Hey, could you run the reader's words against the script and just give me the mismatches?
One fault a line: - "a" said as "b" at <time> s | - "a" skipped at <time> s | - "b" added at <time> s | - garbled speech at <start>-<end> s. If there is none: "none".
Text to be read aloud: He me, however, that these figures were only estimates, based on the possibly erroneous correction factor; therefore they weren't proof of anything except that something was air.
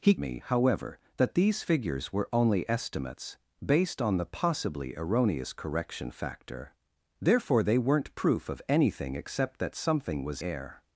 none